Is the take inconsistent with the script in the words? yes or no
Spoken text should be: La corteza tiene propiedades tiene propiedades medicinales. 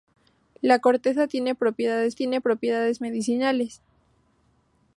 no